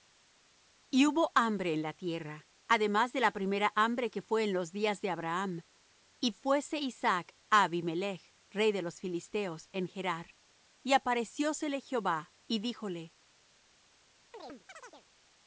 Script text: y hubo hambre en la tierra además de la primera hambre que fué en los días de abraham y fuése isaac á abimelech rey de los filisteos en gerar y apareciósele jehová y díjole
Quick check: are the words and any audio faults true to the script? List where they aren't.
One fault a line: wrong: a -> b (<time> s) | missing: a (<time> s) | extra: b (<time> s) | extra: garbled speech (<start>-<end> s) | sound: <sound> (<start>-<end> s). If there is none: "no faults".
sound: chirp (14.3-15.1 s)